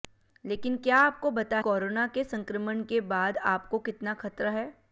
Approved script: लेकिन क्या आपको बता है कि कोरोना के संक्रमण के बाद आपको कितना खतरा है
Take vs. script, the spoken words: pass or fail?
fail